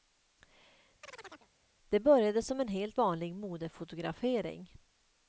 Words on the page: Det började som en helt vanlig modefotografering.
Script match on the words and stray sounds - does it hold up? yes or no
no